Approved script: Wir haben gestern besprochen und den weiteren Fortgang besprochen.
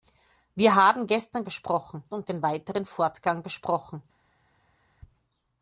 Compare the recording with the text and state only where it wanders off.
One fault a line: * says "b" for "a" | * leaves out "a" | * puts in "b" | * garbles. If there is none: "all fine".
all fine